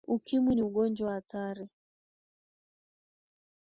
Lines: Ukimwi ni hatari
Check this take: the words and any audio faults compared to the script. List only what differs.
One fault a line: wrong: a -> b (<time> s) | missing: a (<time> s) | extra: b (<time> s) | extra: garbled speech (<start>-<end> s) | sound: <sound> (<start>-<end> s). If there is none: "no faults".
extra: ugonjwa (0.6 s)